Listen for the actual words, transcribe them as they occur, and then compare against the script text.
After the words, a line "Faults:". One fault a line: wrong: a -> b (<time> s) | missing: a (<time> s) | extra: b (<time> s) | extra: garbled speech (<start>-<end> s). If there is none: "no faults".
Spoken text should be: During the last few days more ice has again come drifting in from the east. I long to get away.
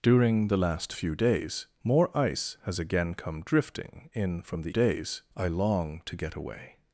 During the last few days more ice has again come drifting in from the days. I long to get away.
Faults:
wrong: east -> days (4.7 s)